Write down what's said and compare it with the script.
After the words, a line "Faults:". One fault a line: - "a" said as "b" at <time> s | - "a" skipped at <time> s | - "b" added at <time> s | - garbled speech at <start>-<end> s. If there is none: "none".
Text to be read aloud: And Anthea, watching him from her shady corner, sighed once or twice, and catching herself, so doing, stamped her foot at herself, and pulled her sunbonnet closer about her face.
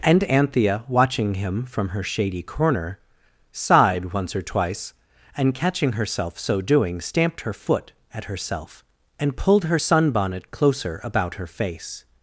And Anthea, watching him from her shady corner, sighed once or twice, and catching herself, so doing, stamped her foot at herself, and pulled her sunbonnet closer about her face.
Faults:
none